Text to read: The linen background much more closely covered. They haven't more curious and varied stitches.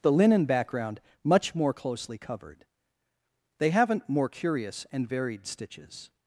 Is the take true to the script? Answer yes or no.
yes